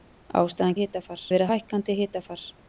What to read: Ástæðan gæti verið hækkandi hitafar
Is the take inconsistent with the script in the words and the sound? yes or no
yes